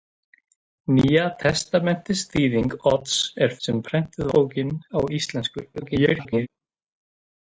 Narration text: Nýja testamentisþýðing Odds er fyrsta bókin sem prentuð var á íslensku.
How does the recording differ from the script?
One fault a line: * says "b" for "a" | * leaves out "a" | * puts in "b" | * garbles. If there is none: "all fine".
* leaves out "fyrsta bókin"
* says "bókin" for "var"
* garbles